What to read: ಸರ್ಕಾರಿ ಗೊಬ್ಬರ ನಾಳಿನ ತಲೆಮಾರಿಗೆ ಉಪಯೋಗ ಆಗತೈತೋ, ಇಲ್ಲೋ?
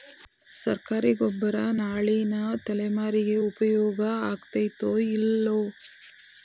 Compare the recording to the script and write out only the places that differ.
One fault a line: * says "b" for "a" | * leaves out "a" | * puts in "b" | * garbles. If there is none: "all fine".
all fine